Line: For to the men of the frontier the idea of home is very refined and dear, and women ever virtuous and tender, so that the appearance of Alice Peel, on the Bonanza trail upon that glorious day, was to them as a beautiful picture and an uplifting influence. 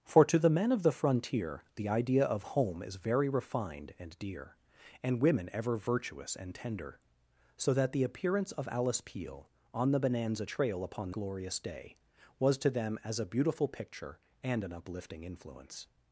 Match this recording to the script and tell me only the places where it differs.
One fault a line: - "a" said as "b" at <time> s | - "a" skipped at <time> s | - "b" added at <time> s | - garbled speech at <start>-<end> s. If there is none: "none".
- "that" skipped at 11.1 s